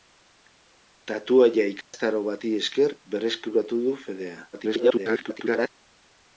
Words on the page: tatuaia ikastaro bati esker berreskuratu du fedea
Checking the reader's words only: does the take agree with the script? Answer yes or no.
no